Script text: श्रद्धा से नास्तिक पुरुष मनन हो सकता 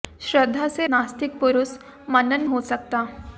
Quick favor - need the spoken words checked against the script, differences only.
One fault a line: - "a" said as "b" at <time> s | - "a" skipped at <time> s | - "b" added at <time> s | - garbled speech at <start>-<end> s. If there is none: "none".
none